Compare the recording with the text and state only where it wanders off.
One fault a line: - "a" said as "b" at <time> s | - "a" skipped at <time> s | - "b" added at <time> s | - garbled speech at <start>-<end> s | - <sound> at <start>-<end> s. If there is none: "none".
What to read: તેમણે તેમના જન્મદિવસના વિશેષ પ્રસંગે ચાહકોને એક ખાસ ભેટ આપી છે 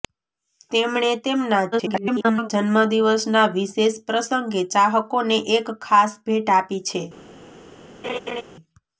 - garbled speech at 1.7-2.5 s
- laugh at 8.0-8.4 s